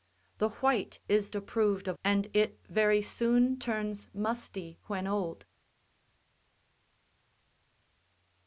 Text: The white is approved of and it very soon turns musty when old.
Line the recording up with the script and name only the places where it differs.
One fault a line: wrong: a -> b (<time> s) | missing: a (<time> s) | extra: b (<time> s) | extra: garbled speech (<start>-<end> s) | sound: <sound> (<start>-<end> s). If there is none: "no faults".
no faults